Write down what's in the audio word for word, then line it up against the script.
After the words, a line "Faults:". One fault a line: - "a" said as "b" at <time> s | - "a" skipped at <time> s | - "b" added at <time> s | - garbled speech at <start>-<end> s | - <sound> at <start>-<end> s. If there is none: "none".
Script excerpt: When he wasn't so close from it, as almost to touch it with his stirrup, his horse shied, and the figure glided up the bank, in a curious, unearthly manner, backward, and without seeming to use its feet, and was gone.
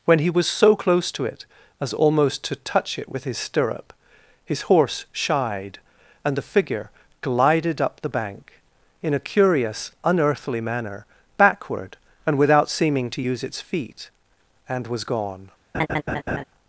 When he was so close to it, as almost to touch it with his stirrup, his horse shied, and the figure glided up the bank, in a curious, unearthly manner, backward, and without seeming to use its feet, and was gone.
Faults:
- "wasn't" said as "was" at 0.3 s
- "from" said as "to" at 1.1 s
- laugh at 15.7-16.4 s